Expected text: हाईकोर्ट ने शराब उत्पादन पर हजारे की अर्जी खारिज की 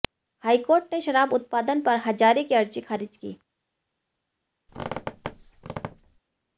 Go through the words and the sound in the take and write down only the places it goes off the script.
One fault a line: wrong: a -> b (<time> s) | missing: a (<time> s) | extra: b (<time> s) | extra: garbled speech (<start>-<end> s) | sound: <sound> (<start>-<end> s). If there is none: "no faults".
sound: squeak (4.7-6.2 s)